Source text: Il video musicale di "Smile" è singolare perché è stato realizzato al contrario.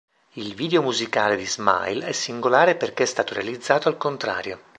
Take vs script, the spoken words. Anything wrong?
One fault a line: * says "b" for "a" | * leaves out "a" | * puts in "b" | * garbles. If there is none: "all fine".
all fine